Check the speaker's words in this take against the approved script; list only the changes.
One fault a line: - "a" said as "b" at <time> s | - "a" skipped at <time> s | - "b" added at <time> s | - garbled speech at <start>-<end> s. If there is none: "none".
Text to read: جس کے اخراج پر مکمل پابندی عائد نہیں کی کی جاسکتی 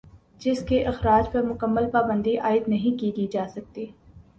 none